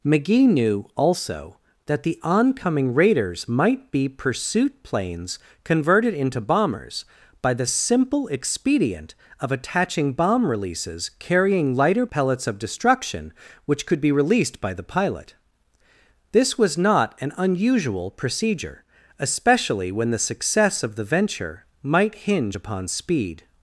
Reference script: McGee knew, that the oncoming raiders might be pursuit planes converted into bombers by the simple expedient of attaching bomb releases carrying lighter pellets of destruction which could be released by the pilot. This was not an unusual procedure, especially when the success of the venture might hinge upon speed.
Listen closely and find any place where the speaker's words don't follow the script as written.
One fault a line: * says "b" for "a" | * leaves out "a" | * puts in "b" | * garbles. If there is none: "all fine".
* puts in "also"